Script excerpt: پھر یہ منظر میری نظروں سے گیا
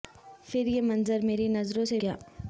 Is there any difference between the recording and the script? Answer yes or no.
no